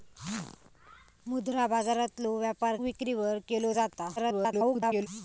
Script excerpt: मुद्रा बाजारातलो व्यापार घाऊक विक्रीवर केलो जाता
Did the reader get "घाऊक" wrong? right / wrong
wrong